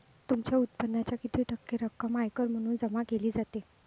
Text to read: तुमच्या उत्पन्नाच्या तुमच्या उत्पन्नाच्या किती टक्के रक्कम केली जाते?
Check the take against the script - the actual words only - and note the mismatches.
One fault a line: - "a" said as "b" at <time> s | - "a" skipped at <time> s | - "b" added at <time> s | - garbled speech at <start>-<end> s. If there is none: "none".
- "तुमच्या उत्पन्नाच्या" skipped at 1.2 s
- "आयकर म्हणून जमा" added at 2.2 s